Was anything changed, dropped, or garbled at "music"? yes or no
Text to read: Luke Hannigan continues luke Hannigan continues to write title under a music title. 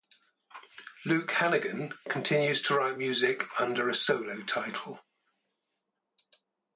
yes